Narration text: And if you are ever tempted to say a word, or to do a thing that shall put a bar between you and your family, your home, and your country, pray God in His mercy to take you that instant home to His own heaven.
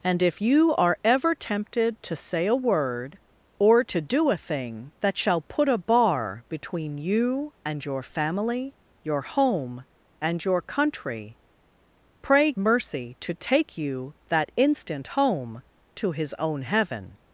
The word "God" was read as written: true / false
false